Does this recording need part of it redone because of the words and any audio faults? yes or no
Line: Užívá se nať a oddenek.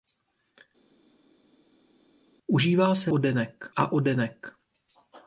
yes